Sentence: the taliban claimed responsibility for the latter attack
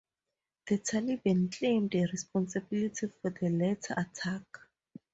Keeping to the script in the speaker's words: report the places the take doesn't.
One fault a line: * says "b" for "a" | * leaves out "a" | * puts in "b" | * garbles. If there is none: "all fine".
all fine